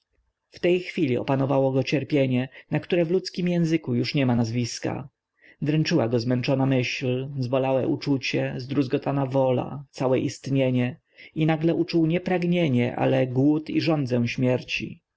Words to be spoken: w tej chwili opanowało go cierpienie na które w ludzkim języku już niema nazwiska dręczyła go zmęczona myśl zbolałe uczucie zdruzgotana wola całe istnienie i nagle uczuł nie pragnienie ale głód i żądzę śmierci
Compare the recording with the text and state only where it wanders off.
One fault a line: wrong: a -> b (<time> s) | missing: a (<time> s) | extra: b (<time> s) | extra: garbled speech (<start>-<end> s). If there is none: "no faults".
no faults